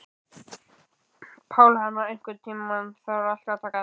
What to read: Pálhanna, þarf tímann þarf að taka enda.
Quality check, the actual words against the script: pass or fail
fail